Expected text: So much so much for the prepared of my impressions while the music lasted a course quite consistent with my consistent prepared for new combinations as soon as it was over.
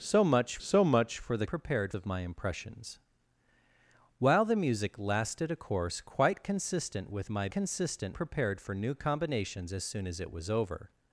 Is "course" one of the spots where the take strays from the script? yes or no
no